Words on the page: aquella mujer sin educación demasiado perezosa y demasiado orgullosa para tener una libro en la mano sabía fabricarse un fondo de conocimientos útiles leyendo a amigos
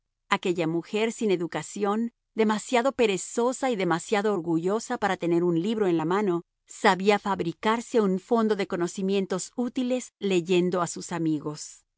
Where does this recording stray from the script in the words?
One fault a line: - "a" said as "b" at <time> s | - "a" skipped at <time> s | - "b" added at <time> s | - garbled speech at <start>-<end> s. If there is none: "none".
- "una" said as "un" at 5.4 s
- "sus" added at 10.9 s